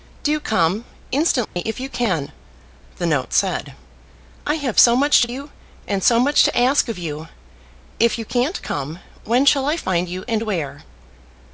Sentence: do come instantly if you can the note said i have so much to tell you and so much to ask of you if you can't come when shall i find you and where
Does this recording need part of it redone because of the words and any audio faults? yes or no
yes